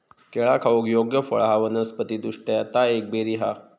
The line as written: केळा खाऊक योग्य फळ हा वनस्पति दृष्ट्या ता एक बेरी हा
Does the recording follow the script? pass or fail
pass